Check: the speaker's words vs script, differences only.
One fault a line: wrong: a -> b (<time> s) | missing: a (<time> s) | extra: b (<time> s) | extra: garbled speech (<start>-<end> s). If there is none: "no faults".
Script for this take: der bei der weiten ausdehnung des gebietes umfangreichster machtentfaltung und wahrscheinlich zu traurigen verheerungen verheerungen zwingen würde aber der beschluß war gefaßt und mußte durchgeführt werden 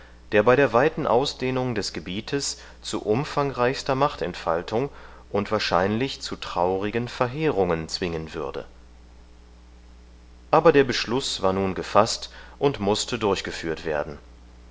extra: zu (2.8 s)
missing: verheerungen (7.9 s)
extra: nun (11.5 s)